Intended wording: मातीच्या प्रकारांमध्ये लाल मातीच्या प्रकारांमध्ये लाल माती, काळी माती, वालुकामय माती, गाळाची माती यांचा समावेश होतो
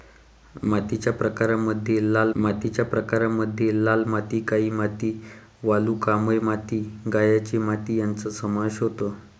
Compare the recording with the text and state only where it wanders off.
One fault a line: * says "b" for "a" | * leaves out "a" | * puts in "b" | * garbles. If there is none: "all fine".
all fine